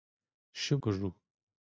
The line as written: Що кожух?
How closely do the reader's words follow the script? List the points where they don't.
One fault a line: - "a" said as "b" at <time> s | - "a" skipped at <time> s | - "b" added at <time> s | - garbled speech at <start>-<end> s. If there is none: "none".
none